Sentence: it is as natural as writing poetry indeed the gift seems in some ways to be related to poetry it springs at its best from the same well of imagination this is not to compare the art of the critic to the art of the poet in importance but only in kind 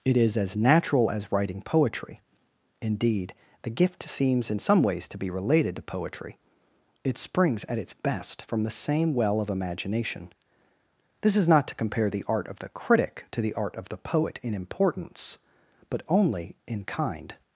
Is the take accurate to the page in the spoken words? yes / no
yes